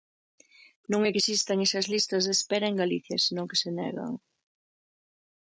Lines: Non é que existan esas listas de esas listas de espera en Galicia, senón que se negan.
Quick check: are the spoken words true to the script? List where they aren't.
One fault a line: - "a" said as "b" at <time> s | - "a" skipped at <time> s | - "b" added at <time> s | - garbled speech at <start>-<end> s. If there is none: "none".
- "esas listas de" skipped at 2.3 s